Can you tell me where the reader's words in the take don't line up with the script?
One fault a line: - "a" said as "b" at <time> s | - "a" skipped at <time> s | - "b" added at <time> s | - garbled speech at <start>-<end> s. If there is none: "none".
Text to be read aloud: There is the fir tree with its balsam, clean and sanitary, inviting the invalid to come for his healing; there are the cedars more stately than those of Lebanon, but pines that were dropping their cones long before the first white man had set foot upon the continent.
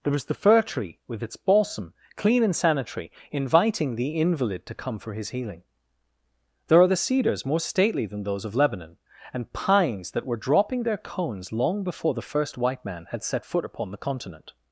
- "but" said as "and" at 9.3 s